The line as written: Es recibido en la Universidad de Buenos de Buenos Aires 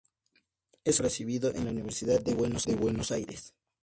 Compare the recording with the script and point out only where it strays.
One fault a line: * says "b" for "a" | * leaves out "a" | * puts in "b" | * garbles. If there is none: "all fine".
all fine